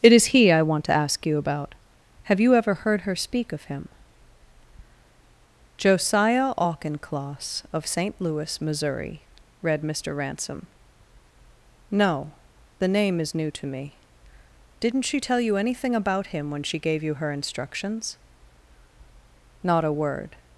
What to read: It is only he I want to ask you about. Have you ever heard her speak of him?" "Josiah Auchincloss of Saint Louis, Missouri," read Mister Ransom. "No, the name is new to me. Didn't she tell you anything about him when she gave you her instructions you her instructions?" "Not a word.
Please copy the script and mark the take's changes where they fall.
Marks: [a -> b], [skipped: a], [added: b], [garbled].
It is [skipped: only] he I want to ask you about. Have you ever heard her speak of him?" "Josiah Auchincloss of Saint Louis, Missouri," read Mister Ransom. "No, the name is new to me. Didn't she tell you anything about him when she gave you her instructions [skipped: you her instructions?"] "Not a word.